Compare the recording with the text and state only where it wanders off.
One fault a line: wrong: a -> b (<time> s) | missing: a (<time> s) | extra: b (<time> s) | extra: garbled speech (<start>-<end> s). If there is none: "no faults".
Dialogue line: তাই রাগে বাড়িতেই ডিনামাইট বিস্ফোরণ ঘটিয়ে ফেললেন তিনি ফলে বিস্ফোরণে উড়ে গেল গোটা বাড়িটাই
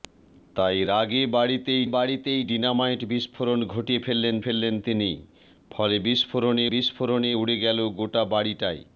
extra: বাড়িতেই (1.9 s)
extra: ফেললেন (4.4 s)
extra: বিস্ফোরণে (6.7 s)